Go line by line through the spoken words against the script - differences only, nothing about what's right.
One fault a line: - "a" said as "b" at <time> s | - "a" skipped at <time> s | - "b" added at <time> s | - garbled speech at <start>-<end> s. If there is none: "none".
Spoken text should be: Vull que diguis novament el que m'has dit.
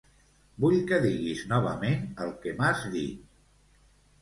none